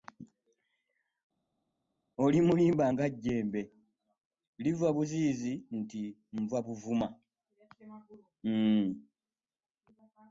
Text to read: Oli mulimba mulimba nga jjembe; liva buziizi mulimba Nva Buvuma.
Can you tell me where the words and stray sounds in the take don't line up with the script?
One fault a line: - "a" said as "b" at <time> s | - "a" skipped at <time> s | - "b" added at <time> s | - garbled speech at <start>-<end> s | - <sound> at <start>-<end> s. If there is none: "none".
- "mulimba" skipped at 2.8 s
- "mulimba" said as "nti" at 5.8 s